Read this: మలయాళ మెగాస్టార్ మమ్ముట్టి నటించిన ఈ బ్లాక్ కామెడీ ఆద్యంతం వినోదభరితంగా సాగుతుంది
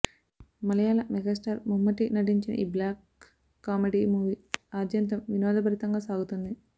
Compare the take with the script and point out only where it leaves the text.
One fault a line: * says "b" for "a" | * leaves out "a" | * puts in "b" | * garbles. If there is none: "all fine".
* puts in "మూవీ"